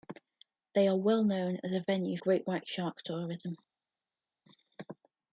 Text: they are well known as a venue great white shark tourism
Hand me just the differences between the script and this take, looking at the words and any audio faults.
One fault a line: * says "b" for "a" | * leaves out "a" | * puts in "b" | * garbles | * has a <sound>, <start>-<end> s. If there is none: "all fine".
all fine